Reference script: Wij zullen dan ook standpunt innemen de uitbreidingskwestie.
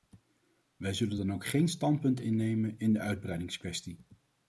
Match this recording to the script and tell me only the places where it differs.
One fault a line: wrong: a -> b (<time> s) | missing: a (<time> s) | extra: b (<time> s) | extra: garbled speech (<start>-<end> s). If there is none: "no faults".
extra: geen (1.5 s)
extra: in (2.8 s)